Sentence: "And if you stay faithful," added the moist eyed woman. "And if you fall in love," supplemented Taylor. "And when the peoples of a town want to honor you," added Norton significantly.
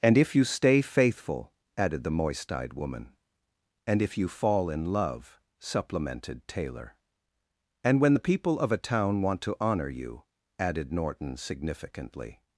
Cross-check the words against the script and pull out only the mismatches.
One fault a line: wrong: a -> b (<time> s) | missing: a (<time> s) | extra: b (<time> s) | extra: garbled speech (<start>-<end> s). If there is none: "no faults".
wrong: peoples -> people (8.2 s)